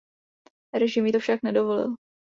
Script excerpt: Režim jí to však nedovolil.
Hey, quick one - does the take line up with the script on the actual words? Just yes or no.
yes